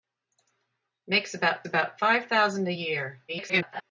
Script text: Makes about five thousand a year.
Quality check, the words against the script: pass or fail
fail